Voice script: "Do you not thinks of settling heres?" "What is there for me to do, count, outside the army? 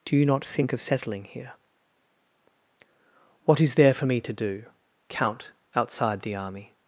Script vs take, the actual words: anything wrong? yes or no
yes